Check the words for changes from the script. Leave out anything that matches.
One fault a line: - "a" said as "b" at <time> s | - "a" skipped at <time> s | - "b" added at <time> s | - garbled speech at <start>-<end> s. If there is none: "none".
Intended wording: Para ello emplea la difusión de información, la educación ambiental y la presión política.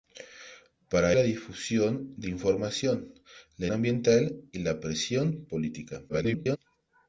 - "ello emplea" skipped at 1.1 s
- "educación" skipped at 3.7 s
- garbled speech at 6.1-6.6 s